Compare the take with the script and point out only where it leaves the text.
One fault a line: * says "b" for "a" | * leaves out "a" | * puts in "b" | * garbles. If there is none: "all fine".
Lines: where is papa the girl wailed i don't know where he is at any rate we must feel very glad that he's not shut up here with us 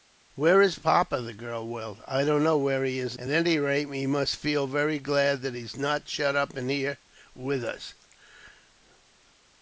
all fine